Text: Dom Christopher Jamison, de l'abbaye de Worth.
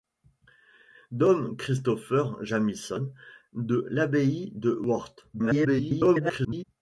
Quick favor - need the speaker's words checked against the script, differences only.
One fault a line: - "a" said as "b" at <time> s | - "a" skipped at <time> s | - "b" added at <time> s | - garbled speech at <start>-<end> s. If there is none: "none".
- garbled speech at 5.3-6.6 s